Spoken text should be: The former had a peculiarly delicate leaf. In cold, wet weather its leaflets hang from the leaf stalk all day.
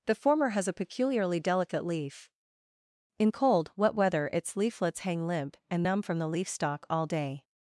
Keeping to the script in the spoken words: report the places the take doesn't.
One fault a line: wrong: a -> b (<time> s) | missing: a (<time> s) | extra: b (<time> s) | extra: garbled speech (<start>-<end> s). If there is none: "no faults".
wrong: had -> has (0.5 s)
extra: limp and numb (5.3 s)